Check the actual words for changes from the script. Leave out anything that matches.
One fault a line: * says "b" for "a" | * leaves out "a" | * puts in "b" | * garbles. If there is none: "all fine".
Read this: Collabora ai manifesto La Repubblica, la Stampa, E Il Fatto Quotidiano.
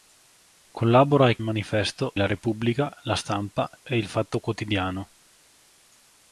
all fine